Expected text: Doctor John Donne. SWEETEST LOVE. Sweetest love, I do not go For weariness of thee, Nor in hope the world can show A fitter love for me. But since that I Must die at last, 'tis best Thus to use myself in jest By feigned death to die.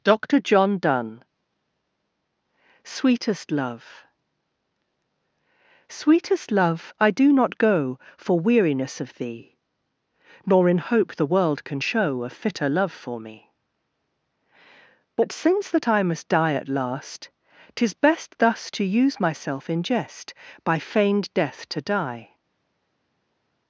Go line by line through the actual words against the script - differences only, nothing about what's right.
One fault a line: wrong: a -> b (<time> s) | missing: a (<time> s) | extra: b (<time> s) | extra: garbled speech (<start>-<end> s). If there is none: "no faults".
no faults